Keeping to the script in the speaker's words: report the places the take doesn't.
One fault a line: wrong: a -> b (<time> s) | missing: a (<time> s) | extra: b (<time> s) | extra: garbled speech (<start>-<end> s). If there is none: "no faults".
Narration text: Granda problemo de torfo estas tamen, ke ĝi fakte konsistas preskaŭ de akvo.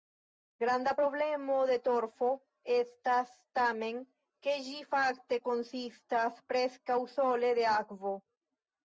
extra: sole (7.1 s)